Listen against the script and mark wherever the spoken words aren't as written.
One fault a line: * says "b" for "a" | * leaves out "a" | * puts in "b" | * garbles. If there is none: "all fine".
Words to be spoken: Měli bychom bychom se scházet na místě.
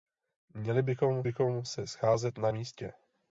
all fine